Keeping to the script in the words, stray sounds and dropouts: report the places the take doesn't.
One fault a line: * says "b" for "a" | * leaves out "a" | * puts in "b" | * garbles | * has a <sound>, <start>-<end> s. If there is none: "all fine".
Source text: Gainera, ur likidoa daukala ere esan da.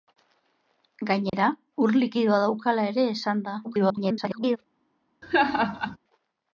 * has a dropout, 1.3-1.3 s
* garbles
* has a laugh, 5.2-6.0 s